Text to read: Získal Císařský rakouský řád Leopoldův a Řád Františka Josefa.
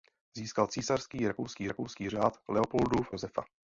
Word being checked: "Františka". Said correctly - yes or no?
no